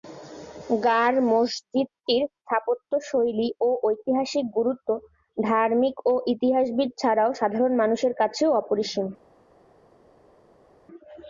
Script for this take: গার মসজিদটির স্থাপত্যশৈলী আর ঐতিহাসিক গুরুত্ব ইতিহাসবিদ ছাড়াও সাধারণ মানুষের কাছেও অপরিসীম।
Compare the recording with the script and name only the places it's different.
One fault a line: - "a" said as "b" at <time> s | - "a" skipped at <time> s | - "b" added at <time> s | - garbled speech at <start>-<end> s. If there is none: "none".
- "আর" said as "ও" at 3.6 s
- "ধার্মিক ও" added at 5.4 s